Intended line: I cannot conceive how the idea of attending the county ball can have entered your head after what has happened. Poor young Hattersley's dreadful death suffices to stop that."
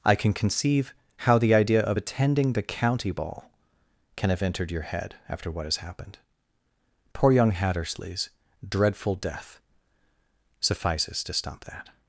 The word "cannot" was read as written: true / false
false